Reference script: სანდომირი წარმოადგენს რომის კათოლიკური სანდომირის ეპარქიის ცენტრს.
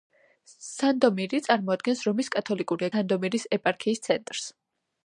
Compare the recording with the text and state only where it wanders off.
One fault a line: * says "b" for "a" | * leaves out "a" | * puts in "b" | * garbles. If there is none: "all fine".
all fine